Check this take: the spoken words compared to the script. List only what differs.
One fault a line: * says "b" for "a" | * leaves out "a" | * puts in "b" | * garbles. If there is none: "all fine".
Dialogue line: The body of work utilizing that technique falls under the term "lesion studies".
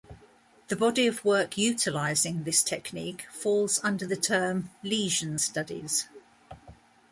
* says "this" for "that"